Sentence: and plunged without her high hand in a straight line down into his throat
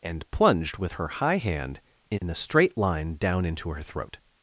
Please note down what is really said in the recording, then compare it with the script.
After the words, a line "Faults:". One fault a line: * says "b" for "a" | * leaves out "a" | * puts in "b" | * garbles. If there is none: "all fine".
and plunged with her high hand in a straight line down into her throat
Faults:
* says "with" for "without"
* says "her" for "his"